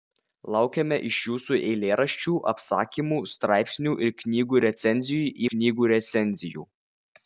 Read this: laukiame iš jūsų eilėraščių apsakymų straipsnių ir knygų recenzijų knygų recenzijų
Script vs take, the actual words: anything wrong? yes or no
no